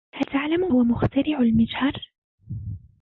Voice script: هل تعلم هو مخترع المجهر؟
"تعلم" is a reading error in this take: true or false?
false